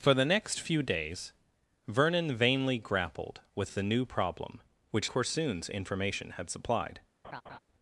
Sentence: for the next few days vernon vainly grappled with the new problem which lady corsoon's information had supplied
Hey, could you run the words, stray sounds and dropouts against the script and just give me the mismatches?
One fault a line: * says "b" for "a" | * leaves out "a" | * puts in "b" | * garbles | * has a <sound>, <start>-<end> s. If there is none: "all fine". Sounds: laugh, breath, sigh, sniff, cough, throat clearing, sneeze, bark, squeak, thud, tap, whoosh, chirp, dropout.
* leaves out "lady"
* has a laugh, 7.2-7.6 s